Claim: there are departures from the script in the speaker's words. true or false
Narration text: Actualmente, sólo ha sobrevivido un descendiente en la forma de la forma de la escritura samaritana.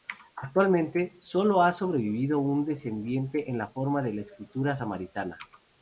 true